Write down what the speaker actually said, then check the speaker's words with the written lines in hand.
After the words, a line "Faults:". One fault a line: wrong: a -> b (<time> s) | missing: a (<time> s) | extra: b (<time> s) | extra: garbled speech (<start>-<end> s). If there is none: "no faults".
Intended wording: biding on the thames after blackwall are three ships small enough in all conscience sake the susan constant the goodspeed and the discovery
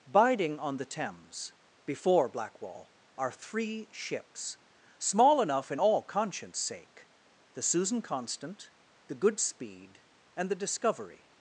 biding on the thames before blackwall are three ships small enough in all conscience sake the susan constant the goodspeed and the discovery
Faults:
wrong: after -> before (1.9 s)